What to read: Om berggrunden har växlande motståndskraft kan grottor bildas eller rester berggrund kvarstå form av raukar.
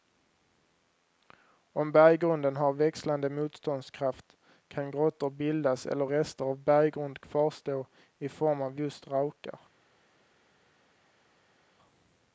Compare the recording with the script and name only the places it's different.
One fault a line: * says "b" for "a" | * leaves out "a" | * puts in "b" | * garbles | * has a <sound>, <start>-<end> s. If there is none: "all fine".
* puts in "av"
* puts in "i"
* puts in "just"